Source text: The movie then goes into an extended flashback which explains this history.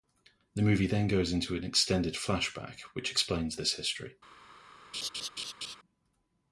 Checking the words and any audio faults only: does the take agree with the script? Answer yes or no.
no